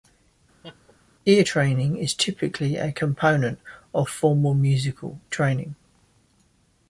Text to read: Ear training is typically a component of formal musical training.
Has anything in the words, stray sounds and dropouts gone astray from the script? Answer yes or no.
yes